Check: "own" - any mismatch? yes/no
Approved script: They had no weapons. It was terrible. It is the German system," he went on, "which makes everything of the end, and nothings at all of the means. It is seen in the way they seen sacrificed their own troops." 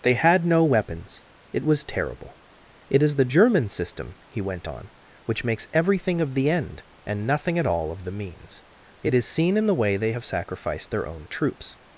no